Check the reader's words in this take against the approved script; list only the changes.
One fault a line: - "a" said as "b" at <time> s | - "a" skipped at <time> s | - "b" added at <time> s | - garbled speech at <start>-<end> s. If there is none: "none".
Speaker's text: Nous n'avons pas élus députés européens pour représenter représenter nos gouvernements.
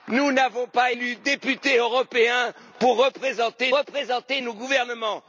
none